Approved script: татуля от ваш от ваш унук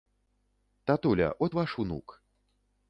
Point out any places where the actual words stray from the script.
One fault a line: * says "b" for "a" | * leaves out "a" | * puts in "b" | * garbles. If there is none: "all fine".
* leaves out "от ваш"